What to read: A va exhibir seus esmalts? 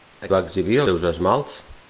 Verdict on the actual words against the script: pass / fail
pass